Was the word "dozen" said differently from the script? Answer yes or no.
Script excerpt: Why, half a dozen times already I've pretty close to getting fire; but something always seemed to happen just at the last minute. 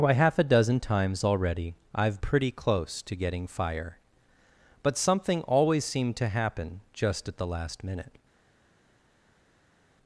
no